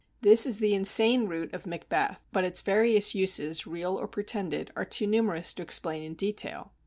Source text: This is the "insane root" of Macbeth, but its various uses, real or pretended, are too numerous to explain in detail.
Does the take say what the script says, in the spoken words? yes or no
yes